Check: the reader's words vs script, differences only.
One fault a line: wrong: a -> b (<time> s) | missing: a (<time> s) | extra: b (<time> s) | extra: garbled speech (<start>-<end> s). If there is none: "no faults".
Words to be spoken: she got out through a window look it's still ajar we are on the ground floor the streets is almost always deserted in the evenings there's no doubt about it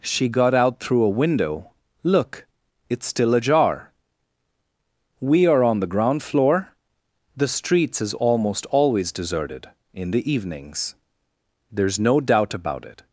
no faults